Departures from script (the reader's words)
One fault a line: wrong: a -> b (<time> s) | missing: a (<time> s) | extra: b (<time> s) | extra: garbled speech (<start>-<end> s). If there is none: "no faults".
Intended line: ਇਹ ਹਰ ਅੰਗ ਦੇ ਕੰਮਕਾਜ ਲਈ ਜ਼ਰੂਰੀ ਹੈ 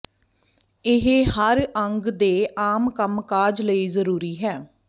extra: ਆਮ (2.6 s)